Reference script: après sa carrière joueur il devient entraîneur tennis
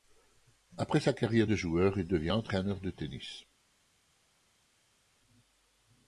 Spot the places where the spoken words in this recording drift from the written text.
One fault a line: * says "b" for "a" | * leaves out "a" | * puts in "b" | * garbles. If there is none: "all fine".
* puts in "de"
* puts in "de"